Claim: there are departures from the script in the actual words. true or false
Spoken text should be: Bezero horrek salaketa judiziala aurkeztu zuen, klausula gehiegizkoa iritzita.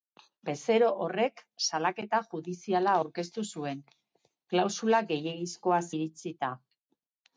false